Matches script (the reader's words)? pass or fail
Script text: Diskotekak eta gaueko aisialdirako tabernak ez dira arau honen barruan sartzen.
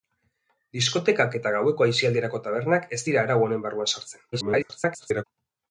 fail